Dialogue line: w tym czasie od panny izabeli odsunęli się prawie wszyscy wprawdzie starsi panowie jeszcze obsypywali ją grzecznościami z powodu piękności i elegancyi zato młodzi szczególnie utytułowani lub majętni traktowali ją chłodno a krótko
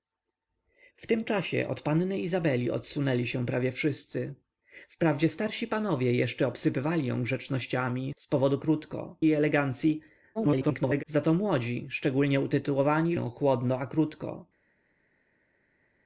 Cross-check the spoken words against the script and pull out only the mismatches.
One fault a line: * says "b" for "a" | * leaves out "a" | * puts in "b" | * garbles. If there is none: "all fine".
* says "krótko" for "piękności"
* garbles
* leaves out "lub majętni traktowali"